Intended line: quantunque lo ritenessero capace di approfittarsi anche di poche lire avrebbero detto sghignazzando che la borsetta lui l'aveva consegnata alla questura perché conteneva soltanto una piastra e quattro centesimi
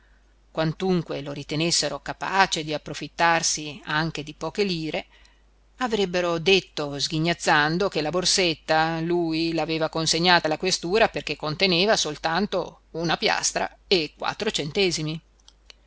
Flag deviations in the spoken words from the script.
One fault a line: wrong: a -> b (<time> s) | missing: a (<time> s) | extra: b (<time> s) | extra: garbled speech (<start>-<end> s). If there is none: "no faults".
no faults